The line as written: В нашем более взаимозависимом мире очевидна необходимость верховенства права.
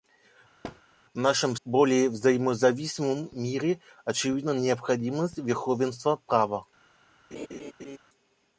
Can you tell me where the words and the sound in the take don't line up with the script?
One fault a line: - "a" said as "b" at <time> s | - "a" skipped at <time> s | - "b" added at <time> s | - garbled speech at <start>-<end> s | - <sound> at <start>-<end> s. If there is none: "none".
- thud at 0.6-0.8 s
- laugh at 7.3-8.0 s